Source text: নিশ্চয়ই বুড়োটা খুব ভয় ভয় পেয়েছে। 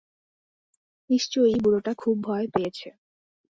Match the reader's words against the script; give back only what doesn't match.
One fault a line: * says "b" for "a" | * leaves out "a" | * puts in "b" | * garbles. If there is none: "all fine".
* leaves out "ভয়"